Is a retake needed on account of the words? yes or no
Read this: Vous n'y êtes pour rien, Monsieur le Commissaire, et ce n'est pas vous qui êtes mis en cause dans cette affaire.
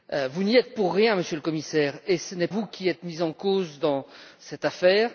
yes